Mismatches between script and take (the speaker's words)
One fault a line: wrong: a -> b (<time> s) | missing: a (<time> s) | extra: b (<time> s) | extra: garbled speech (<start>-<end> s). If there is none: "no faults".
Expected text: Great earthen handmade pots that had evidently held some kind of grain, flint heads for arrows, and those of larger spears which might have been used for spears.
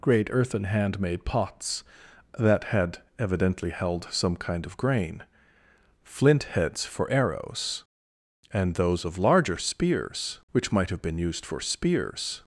no faults